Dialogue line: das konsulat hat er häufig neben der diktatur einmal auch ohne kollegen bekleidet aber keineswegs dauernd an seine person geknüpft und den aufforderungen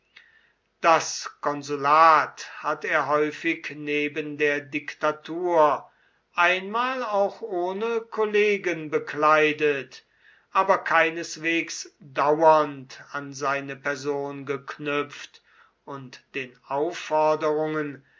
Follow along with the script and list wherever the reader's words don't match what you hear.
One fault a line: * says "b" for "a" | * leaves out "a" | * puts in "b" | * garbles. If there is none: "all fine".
all fine